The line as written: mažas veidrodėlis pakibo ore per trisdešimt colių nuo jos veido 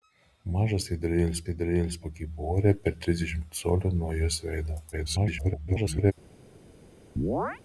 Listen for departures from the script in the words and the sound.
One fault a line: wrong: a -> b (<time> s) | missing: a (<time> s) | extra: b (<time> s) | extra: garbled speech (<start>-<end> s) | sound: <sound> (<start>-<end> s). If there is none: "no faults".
extra: veidrodėlis (1.5 s)
extra: garbled speech (4.9-6.1 s)
sound: chirp (7.2-7.6 s)